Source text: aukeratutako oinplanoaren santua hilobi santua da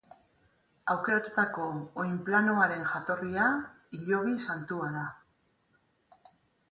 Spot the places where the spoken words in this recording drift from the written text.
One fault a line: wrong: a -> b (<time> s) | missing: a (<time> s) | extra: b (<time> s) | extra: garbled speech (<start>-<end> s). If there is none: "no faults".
wrong: santua -> jatorria (2.9 s)